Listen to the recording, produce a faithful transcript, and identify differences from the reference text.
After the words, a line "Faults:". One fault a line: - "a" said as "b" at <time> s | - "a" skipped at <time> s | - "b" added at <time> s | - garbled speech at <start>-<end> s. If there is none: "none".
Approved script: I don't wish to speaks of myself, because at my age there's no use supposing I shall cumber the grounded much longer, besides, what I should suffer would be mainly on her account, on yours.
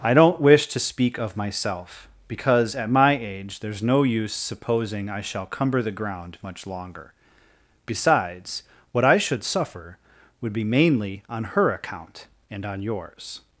I don't wish to speak of myself, because at my age there's no use supposing I shall cumber the ground much longer, besides, what I should suffer would be mainly on her account, and on yours.
Faults:
- "speaks" said as "speak" at 0.8 s
- "grounded" said as "ground" at 5.9 s
- "and" added at 12.5 s